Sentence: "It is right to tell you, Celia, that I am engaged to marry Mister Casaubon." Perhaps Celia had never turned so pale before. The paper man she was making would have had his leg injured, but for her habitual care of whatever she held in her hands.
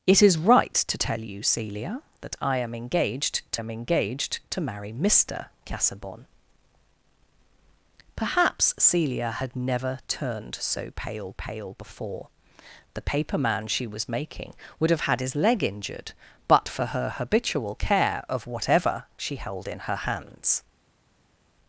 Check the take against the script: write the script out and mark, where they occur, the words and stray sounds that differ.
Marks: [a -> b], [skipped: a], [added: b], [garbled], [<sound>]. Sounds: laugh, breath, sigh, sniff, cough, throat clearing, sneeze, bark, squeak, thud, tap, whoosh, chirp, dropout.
"It is right to tell you, Celia, that I am engaged to [added: am engaged to] marry Mister Casaubon." Perhaps Celia had never turned so pale [added: pale] before. The paper man she was making would have had his leg injured, but for her habitual care of whatever she held in her hands.